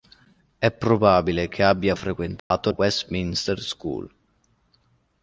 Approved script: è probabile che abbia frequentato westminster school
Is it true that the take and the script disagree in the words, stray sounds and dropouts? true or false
true